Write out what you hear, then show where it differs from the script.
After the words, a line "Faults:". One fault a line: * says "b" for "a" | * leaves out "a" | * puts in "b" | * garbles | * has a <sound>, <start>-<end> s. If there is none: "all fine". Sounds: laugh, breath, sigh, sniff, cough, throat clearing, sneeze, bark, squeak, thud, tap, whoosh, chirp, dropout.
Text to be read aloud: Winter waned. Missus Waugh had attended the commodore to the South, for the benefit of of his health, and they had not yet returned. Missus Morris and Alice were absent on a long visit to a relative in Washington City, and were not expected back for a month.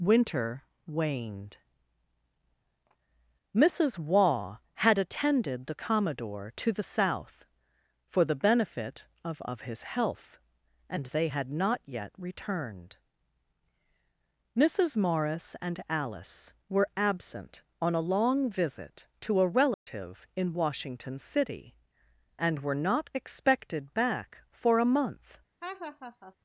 Winter waned. Missus Waugh had attended the commodore to the South, for the benefit of of his health, and they had not yet returned. Missus Morris and Alice were absent on a long visit to a relative in Washington City, and were not expected back for a month.
Faults:
* has a dropout, 19.7-19.9 s
* has a laugh, 25.6-26.4 s